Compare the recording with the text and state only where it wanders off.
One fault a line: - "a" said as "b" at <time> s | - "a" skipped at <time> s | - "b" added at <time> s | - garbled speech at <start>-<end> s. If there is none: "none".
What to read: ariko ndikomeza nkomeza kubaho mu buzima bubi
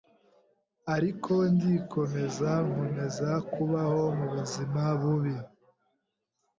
none